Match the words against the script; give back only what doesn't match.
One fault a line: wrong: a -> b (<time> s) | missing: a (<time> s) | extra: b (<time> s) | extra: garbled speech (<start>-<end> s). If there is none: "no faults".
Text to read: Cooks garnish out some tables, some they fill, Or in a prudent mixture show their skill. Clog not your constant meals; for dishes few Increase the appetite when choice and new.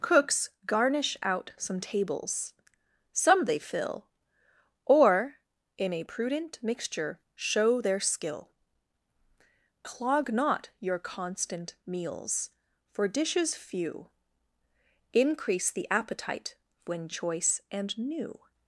no faults